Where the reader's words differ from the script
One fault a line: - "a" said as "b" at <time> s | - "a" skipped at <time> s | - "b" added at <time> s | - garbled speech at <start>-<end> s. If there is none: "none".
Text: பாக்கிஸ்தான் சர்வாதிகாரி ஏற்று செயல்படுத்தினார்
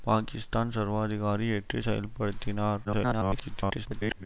- garbled speech at 2.8-4.3 s